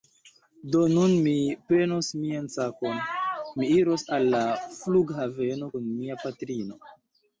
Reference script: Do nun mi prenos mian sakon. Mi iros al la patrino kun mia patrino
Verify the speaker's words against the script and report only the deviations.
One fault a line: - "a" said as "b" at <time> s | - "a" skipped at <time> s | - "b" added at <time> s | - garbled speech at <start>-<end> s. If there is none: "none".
- "patrino" said as "flughaveno" at 4.7 s